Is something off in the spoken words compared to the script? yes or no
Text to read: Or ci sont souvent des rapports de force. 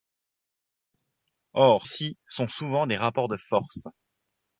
no